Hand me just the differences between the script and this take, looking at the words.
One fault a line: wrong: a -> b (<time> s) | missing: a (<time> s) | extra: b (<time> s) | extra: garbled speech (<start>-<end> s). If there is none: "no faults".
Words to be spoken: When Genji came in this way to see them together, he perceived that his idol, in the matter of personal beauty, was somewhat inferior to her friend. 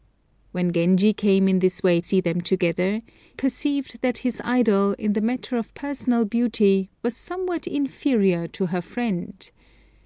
missing: to (2.0 s)
missing: he (3.0 s)